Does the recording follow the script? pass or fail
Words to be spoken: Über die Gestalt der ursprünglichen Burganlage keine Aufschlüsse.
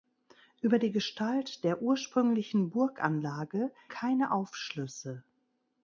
pass